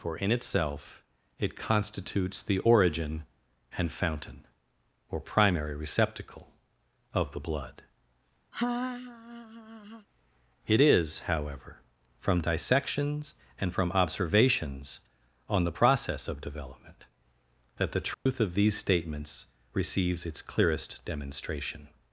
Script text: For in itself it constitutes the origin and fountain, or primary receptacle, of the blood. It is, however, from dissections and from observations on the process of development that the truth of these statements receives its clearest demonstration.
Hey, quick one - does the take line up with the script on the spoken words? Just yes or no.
yes